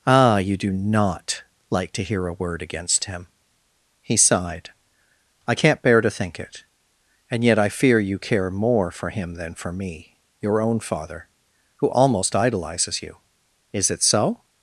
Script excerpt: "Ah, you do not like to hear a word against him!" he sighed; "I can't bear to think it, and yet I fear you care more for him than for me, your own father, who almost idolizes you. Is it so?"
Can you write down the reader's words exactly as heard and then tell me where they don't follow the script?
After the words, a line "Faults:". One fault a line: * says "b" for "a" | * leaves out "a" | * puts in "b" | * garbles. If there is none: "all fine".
"Ah, you do not like to hear a word against him!" he sighed; "I can't bear to think it, and yet I fear you care more for him than for me, your own father, who almost idolizes you. Is it so?"
Faults:
all fine